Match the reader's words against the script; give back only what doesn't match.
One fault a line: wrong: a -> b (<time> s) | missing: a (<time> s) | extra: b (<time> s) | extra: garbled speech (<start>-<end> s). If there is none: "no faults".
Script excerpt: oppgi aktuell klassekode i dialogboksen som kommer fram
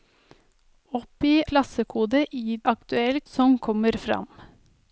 missing: aktuell (1.3 s)
wrong: dialogboksen -> aktuell (2.7 s)